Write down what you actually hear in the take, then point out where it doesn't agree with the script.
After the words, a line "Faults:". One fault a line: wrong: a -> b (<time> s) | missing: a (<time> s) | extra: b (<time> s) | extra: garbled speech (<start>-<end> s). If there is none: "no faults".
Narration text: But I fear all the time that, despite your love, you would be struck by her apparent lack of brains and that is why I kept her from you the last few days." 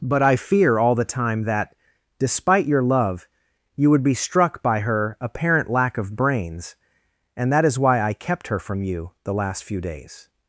But I fear all the time that, despite your love, you would be struck by her apparent lack of brains and that is why I kept her from you the last few days."
Faults:
no faults